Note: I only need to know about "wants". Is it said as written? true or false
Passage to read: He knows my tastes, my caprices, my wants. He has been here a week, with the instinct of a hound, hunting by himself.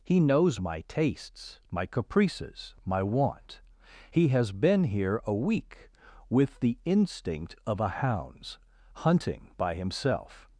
false